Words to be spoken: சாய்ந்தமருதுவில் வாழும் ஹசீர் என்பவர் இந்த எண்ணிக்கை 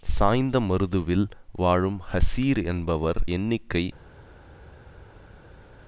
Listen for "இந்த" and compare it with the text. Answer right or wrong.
wrong